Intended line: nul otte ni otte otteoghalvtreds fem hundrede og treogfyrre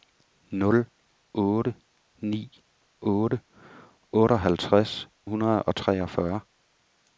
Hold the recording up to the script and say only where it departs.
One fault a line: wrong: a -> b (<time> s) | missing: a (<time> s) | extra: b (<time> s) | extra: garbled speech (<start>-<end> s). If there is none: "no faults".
missing: fem (5.0 s)